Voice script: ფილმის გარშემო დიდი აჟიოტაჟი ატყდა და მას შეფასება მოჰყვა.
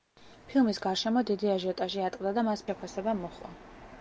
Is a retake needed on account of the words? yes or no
no